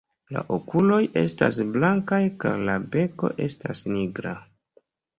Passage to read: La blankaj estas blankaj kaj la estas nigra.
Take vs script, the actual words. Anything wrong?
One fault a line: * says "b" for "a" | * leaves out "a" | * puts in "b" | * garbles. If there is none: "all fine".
* says "okuloj" for "blankaj"
* puts in "beko"